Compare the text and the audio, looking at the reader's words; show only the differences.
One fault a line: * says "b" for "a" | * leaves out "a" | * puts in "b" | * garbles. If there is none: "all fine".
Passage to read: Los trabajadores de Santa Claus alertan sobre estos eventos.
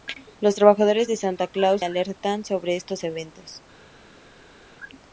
all fine